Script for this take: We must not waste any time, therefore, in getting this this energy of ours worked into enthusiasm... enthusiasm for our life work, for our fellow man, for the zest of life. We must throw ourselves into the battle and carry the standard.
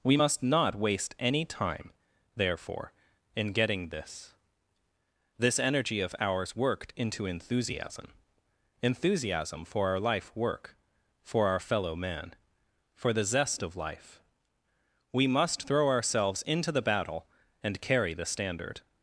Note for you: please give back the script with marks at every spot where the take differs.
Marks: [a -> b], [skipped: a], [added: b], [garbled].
We must not waste any time, therefore, in getting this this energy of ours worked into enthusiasm... enthusiasm for our life work, for our fellow man, for the zest of life. We must throw ourselves into the battle and carry the standard.